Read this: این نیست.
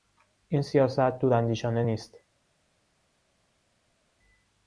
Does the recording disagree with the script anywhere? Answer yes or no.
yes